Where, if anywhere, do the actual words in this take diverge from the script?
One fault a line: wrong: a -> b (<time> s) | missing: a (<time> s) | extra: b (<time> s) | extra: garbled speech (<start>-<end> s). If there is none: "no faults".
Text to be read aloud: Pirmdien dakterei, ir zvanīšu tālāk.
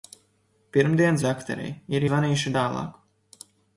no faults